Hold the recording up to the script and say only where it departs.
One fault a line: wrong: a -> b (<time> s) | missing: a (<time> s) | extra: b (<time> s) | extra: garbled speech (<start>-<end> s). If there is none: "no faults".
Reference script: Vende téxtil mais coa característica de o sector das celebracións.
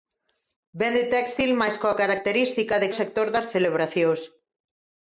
no faults